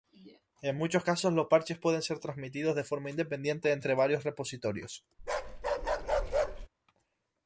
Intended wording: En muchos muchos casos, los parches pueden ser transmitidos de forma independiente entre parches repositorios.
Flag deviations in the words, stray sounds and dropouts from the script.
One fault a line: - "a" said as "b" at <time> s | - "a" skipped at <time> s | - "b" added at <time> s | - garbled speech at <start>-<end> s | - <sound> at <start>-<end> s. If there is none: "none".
- "muchos" skipped at 1.0 s
- "parches" said as "varios" at 3.9 s
- bark at 5.2-6.7 s